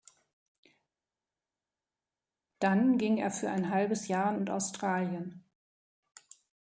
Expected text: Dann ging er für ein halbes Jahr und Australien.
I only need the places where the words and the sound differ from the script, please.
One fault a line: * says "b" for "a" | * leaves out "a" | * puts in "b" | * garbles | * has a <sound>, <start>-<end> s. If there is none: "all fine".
all fine